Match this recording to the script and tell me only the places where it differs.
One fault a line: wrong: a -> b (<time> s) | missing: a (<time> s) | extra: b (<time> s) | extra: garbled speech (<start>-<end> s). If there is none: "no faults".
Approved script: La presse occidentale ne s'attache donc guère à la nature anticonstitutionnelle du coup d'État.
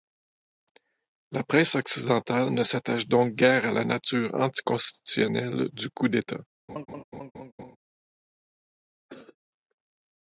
no faults